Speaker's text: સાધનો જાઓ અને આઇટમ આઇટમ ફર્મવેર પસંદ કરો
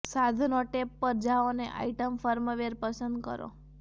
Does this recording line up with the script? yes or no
no